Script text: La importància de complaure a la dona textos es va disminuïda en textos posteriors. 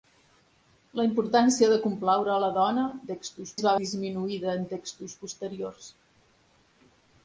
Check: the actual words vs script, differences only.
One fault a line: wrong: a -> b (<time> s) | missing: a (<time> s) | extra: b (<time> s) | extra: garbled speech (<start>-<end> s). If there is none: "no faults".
no faults